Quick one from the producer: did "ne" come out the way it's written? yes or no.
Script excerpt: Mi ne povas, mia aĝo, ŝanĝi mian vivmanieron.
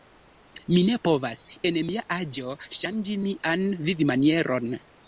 yes